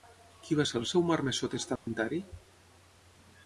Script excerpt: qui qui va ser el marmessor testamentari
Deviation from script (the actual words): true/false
true